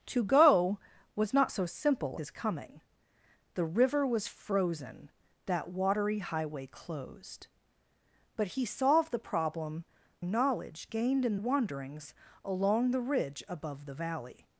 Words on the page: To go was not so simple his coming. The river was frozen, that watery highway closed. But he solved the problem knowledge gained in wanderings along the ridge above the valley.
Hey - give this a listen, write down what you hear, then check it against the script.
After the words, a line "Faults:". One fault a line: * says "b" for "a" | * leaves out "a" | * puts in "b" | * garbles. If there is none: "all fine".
To go was not so simple his coming. The river was frozen, that watery highway closed. But he solved the problem knowledge gained in wanderings along the ridge above the valley.
Faults:
all fine